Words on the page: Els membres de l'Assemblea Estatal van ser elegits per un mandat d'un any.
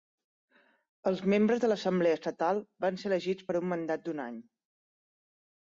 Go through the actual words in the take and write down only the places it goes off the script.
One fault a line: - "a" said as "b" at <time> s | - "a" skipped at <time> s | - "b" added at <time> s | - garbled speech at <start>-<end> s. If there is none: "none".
none